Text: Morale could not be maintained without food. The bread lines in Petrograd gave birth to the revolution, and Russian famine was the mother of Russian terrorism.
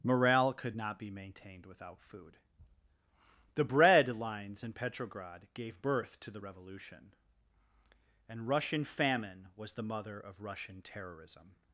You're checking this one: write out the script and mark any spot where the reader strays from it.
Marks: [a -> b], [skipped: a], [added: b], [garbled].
Morale could not be maintained without food. The bread lines in Petrograd gave birth to the revolution, and Russian famine was the mother of Russian terrorism.